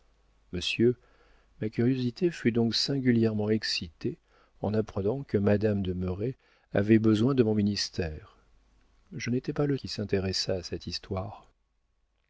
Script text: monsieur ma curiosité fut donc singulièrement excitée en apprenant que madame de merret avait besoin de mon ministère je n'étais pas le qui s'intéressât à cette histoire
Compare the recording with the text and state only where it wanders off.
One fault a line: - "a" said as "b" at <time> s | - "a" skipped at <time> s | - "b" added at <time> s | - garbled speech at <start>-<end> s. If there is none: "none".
none